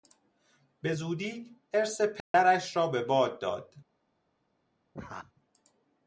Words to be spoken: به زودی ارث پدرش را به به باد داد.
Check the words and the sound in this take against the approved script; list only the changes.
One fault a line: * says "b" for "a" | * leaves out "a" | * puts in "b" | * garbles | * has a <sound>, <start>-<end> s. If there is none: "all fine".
* has a dropout, 2.2-2.3 s
* leaves out "به"
* has a laugh, 4.9-5.3 s